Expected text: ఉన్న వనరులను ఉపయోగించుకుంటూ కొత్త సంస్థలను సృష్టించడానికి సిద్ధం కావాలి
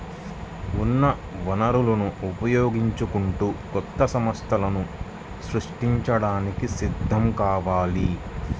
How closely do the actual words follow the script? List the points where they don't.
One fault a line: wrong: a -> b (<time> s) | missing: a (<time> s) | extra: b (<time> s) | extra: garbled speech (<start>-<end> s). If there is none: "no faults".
no faults